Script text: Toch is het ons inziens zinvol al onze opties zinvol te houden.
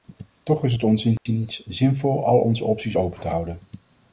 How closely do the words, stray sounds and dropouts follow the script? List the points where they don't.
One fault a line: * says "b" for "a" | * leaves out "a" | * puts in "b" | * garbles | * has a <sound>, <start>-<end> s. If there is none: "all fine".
* has a dropout, 1.2-1.3 s
* says "open" for "zinvol"